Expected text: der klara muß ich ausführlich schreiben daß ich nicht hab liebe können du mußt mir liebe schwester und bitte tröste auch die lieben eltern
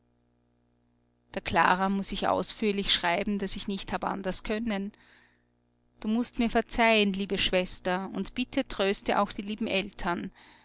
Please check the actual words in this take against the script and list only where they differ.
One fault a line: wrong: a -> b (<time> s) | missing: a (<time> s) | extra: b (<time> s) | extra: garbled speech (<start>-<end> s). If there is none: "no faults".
wrong: liebe -> anders (4.0 s)
extra: verzeihen (6.5 s)